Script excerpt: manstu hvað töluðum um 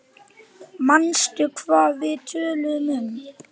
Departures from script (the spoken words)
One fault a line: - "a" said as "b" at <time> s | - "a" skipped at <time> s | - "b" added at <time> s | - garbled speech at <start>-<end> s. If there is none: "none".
- "við" added at 2.0 s